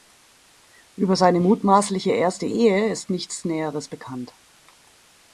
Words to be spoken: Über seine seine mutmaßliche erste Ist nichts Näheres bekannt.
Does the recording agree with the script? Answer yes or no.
no